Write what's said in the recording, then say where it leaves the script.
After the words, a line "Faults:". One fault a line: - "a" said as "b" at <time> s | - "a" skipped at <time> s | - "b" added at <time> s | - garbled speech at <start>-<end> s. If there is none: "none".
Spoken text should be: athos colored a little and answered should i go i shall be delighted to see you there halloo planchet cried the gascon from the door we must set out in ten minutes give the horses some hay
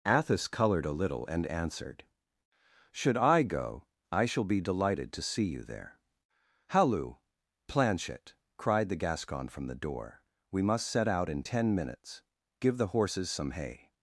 athos colored a little and answered should i go i shall be delighted to see you there halloo planchet cried the gascon from the door we must set out in ten minutes give the horses some hay
Faults:
none